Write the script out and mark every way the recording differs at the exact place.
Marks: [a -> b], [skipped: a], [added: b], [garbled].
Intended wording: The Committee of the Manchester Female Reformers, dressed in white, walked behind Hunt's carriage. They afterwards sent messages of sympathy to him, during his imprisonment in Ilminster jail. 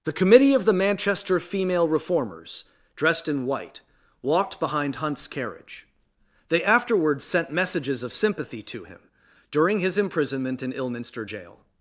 The Committee of the Manchester Female Reformers, dressed in white, walked behind Hunt's carriage. They afterwards sent messages of sympathy to him, during his imprisonment in Ilminster jail.